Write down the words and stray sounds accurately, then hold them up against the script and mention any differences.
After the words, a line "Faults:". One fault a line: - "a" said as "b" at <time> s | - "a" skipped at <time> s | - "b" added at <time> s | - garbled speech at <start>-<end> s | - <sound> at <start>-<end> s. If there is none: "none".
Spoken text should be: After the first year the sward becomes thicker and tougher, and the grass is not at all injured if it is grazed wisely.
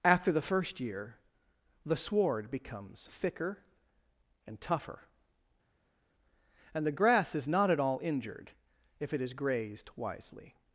After the first year the sward becomes thicker and tougher, and the grass is not at all injured if it is grazed wisely.
Faults:
none